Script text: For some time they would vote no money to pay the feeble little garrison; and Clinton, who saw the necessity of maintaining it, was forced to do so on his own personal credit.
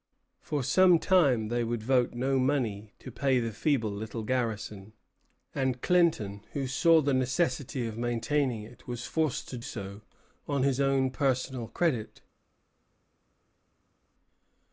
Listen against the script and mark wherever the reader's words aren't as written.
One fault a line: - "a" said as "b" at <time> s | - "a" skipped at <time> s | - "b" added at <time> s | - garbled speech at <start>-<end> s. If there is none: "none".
- "do" skipped at 9.6 s